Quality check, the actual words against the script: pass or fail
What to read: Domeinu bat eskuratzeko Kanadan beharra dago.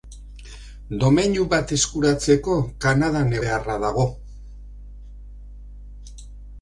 pass